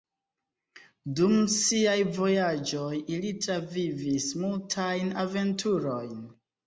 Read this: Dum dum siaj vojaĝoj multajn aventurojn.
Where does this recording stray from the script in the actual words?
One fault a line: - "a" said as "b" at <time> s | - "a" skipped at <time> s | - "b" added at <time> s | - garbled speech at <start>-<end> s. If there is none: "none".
- "dum" skipped at 1.3 s
- "ili travivis" added at 3.2 s